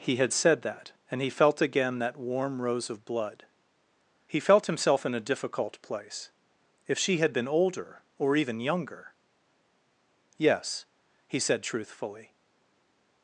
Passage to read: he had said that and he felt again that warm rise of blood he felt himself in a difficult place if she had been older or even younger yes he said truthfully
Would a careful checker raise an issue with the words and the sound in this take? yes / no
yes